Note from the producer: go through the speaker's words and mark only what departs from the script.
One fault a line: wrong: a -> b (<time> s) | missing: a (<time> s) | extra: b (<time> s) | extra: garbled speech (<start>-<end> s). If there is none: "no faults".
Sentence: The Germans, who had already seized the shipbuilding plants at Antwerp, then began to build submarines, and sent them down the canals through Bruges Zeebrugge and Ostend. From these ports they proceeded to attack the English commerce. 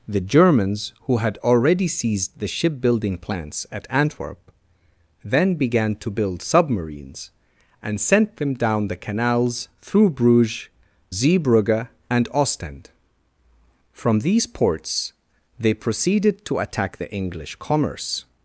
no faults